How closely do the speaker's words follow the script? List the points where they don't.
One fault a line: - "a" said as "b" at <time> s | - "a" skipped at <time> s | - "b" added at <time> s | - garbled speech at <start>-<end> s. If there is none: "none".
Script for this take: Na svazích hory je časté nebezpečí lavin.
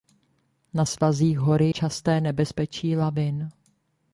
- "je" skipped at 1.7 s